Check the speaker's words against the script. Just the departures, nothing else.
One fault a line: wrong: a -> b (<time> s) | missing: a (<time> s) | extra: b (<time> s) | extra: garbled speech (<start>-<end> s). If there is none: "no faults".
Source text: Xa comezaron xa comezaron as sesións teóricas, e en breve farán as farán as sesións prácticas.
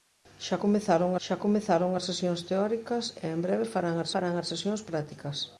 no faults